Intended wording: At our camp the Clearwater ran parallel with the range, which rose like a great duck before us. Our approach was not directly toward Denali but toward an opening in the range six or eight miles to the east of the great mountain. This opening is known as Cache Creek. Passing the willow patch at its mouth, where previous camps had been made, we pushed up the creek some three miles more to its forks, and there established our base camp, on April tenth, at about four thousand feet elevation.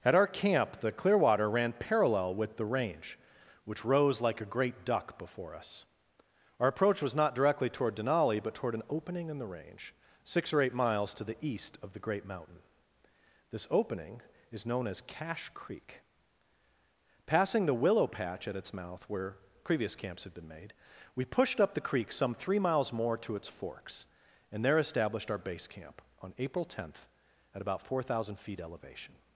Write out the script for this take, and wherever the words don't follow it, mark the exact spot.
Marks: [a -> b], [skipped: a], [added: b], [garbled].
At our camp the Clearwater ran parallel with the range, which rose like a great duck before us. Our approach was not directly toward Denali but toward an opening in the range six or eight miles to the east of the great mountain. This opening is known as Cache Creek. Passing the willow patch at its mouth, where previous camps had been made, we pushed up the creek some three miles more to its forks, and there established our base camp, on April tenth, at about four thousand feet elevation.